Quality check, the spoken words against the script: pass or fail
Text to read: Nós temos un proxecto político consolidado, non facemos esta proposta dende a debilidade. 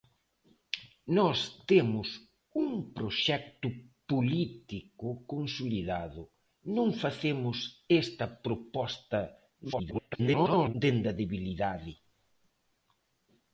fail